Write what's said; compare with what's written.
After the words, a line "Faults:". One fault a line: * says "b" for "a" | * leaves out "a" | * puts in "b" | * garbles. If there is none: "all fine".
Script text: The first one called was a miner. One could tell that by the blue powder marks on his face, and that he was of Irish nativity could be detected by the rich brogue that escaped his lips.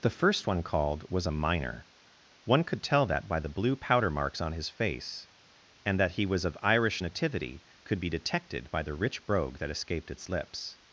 The first one called was a miner. One could tell that by the blue powder marks on his face, and that he was of Irish nativity could be detected by the rich brogue that escaped its lips.
Faults:
* says "its" for "his"